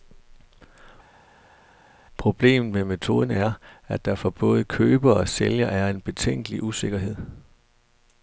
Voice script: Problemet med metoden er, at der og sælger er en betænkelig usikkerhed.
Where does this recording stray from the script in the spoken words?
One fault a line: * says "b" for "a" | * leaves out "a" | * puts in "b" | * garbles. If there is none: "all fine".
* puts in "for både køber"